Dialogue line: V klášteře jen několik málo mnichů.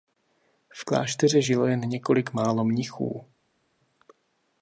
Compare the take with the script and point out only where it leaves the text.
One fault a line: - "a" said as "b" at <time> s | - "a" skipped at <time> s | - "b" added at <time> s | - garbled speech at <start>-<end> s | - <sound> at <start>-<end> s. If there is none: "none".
- "žilo" added at 1.4 s